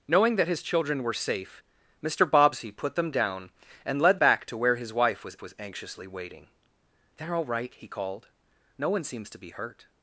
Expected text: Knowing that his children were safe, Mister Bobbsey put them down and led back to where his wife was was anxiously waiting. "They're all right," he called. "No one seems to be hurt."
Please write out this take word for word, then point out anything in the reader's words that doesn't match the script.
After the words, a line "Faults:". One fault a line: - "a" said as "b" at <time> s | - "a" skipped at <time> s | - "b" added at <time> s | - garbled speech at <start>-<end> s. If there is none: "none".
Knowing that his children were safe, Mister Bobbsey put them down and led back to where his wife was was anxiously waiting. "They're all right," he called. "No one seems to be hurt."
Faults:
none